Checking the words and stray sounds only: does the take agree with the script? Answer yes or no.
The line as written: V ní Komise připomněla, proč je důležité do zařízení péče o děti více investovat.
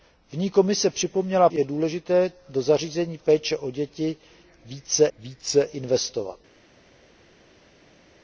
no